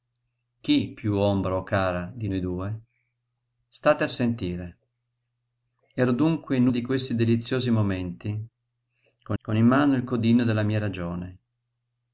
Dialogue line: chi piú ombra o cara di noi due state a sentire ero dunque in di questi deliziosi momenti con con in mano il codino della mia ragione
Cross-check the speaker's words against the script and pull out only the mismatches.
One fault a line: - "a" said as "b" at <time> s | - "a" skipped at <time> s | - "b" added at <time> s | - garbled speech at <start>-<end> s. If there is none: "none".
none